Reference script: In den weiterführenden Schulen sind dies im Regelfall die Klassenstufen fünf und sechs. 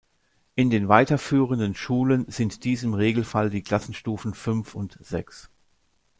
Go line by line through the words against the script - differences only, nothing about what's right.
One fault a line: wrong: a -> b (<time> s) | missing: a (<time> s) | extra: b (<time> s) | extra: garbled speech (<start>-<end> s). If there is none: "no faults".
no faults